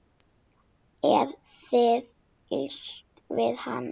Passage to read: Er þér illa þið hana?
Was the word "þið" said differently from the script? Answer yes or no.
yes